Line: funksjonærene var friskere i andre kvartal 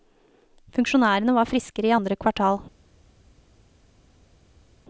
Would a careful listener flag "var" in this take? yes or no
no